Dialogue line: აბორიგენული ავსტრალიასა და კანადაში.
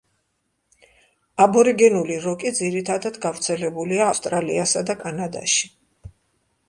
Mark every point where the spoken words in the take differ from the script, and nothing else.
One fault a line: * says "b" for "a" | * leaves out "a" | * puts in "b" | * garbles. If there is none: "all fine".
* puts in "როკი ძირითადად გავრცელებულია"